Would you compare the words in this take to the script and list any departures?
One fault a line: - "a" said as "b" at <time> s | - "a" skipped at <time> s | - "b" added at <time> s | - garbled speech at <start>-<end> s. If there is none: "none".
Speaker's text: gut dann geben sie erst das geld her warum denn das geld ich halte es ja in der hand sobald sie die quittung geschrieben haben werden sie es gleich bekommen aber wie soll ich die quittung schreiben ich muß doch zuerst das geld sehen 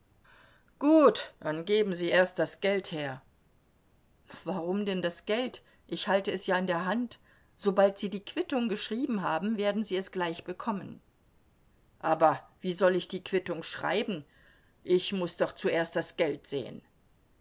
none